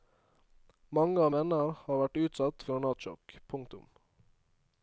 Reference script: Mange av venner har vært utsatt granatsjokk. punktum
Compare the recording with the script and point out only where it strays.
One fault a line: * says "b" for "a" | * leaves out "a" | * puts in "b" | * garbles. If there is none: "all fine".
all fine